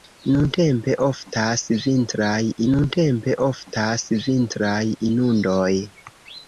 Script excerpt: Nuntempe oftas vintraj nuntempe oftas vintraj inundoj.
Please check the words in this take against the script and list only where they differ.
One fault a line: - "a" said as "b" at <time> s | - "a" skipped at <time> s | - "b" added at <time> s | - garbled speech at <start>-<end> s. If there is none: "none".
none